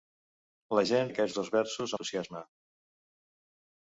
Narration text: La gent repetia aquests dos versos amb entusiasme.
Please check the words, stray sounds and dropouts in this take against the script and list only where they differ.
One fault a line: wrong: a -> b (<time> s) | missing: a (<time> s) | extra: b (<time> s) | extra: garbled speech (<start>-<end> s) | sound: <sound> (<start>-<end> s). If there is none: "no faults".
missing: repetia (1.1 s)
missing: amb (2.0 s)